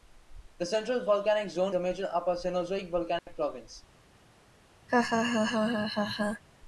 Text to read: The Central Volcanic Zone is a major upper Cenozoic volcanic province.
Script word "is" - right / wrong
wrong